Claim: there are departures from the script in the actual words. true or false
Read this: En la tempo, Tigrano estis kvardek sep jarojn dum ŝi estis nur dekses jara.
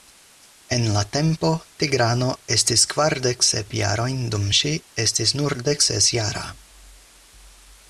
false